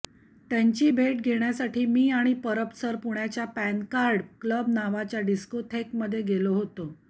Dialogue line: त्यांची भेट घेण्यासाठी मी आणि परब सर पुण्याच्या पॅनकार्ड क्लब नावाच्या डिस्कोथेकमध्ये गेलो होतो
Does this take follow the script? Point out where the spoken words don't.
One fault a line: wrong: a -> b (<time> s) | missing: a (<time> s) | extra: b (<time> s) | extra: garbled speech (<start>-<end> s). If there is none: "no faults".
no faults